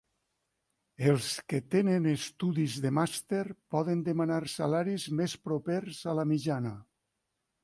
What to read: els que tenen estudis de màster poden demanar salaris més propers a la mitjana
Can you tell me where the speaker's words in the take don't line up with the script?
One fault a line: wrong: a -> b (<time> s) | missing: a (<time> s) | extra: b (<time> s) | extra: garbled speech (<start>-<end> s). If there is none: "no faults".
no faults